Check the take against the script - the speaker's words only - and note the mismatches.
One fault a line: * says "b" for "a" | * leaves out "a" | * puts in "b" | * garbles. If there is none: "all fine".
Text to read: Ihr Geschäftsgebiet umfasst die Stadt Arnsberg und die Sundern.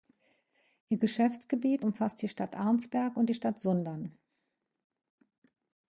* puts in "Stadt"